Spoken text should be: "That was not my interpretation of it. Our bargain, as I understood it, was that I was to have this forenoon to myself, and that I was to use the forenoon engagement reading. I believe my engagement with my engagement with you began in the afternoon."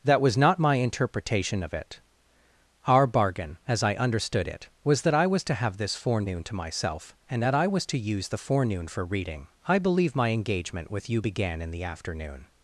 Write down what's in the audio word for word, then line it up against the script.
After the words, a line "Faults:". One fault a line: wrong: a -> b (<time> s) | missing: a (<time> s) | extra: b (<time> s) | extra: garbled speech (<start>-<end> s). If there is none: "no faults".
"That was not my interpretation of it. Our bargain, as I understood it, was that I was to have this forenoon to myself, and that I was to use the forenoon for reading. I believe my engagement with you began in the afternoon."
Faults:
wrong: engagement -> for (8.9 s)
missing: my engagement with (11.1 s)